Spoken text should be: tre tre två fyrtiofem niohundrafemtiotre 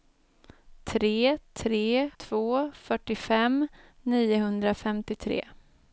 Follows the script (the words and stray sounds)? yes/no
yes